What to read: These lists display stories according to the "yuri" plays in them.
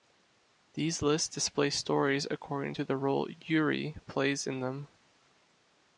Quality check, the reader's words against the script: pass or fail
fail